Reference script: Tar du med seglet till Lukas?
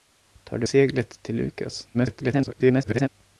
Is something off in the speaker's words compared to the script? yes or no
yes